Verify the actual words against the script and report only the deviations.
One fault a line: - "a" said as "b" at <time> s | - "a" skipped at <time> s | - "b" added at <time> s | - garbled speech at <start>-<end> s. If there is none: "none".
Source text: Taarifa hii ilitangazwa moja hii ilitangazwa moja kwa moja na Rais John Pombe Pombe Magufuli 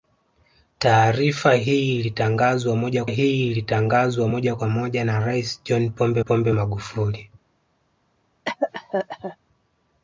none